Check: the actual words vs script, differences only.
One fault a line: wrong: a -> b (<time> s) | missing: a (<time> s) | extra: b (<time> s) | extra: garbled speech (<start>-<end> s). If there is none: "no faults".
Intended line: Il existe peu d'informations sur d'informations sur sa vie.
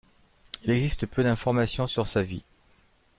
missing: d'informations sur (2.1 s)